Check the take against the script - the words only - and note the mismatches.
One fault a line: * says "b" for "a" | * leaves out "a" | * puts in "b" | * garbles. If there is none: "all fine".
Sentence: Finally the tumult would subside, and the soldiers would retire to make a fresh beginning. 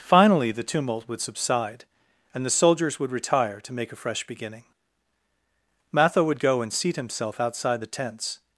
* puts in "Matho would go and seat himself outside the tents"